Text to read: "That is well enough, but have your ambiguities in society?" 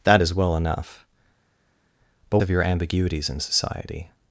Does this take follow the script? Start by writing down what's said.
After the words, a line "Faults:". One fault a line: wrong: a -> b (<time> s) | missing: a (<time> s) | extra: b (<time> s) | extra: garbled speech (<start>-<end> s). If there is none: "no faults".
"That is well enough, but have your ambiguities in society?"
Faults:
no faults